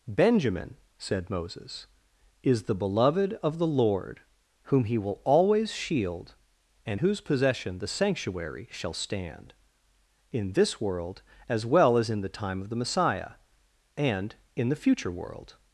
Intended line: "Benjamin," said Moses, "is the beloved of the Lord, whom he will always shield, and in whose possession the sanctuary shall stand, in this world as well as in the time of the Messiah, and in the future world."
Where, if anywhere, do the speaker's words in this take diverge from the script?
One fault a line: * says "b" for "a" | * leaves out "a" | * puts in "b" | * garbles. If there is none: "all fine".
* leaves out "in"